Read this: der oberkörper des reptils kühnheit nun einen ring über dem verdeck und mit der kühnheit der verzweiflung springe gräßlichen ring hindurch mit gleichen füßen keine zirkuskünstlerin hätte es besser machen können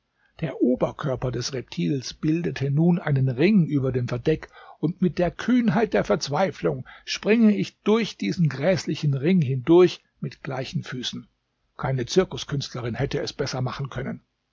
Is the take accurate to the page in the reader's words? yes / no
no